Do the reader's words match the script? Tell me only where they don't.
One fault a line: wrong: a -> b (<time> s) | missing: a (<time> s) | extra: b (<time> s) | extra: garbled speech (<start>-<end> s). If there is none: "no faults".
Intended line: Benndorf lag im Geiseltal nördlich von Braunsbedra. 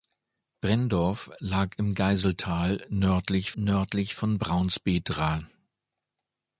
extra: nördlich (3.5 s)